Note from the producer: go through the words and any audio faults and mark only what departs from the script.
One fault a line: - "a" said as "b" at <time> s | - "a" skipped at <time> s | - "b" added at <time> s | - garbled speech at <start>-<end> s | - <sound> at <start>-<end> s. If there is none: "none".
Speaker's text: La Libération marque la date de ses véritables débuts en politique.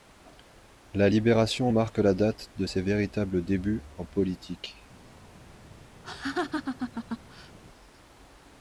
- laugh at 6.0-7.6 s